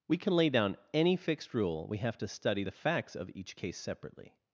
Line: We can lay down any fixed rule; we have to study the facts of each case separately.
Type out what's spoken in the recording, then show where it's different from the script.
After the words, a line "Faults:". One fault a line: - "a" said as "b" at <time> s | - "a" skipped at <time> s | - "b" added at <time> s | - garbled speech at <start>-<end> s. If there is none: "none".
We can lay down any fixed rule; we have to study the facts of each case separately.
Faults:
none